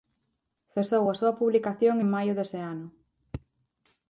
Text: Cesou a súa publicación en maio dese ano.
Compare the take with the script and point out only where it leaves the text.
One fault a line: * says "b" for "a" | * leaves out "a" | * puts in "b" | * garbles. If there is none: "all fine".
all fine